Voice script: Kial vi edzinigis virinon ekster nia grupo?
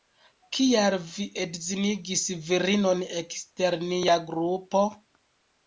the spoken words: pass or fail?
pass